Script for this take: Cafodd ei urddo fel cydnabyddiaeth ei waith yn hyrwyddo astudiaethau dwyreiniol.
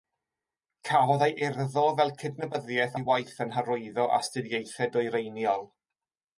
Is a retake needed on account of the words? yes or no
no